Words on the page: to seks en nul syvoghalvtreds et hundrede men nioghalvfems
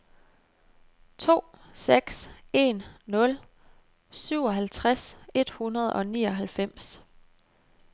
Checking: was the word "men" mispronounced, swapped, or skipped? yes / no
yes